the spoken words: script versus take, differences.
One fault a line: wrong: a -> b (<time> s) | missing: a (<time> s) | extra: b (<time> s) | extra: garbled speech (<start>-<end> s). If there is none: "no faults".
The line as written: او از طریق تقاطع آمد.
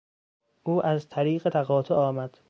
no faults